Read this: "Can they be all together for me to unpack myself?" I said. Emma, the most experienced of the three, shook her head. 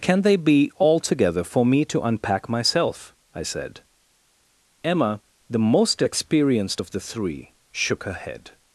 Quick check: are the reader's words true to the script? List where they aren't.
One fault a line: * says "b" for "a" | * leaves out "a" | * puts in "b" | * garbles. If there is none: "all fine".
all fine